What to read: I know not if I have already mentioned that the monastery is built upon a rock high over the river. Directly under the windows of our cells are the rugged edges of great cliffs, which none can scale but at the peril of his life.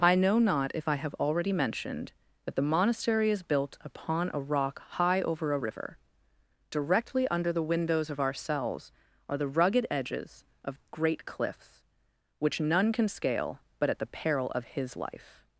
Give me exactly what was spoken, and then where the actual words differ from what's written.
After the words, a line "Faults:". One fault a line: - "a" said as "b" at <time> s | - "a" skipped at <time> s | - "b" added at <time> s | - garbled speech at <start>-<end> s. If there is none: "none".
I know not if I have already mentioned that the monastery is built upon a rock high over a river. Directly under the windows of our cells are the rugged edges of great cliffs, which none can scale but at the peril of his life.
Faults:
- "the" said as "a" at 5.5 s